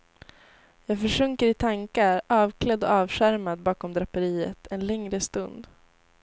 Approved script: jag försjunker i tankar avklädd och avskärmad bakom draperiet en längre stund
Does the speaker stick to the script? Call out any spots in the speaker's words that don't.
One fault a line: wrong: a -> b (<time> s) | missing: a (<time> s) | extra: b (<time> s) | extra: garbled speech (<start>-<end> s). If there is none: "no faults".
no faults